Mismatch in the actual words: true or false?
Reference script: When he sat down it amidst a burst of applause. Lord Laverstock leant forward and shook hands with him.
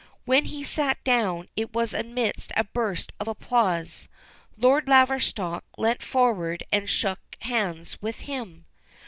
true